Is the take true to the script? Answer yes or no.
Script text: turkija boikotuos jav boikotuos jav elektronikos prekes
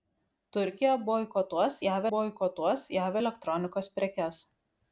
yes